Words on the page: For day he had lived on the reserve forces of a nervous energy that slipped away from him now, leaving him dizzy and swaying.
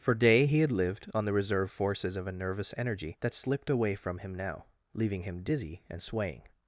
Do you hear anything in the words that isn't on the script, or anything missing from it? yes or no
no